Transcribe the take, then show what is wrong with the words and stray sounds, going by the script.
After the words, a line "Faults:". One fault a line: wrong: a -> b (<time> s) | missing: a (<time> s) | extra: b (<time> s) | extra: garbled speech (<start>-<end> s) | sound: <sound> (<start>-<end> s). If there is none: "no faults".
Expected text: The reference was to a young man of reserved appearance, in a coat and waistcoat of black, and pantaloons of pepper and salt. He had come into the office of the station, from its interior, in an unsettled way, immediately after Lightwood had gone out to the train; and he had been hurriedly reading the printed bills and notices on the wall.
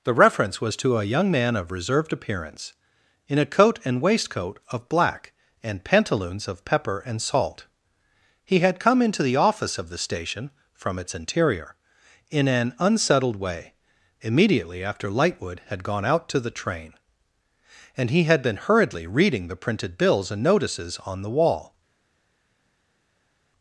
The reference was to a young man of reserved appearance, in a coat and waistcoat of black, and pantaloons of pepper and salt. He had come into the office of the station, from its interior, in an unsettled way, immediately after Lightwood had gone out to the train; and he had been hurriedly reading the printed bills and notices on the wall.
Faults:
no faults